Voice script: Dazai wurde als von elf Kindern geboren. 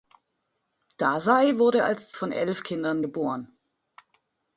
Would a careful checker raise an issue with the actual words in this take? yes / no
no